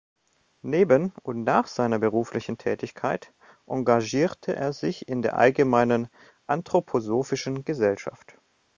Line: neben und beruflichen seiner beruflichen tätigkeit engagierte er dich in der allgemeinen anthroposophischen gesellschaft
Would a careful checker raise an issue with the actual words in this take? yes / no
yes